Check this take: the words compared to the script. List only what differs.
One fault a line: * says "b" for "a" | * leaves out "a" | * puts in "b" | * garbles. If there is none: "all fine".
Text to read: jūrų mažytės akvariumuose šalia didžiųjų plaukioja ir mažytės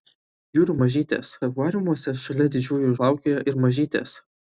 all fine